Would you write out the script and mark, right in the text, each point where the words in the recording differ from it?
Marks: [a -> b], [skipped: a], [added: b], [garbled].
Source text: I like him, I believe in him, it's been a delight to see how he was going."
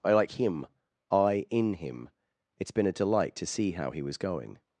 I like him, I [skipped: believe] in him, it's been a delight to see how he was going."